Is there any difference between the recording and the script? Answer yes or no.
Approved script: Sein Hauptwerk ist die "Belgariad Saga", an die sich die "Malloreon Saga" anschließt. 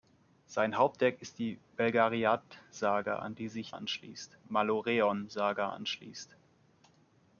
yes